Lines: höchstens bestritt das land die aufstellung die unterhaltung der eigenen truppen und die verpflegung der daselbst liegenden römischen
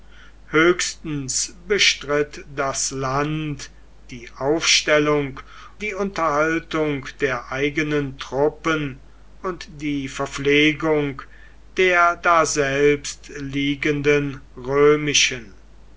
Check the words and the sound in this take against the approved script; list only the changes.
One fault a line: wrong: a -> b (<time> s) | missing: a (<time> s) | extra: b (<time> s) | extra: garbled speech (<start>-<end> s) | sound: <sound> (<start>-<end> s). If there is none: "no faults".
no faults